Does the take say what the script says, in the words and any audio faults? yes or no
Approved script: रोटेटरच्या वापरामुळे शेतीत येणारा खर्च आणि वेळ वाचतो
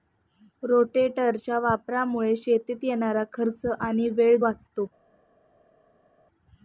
yes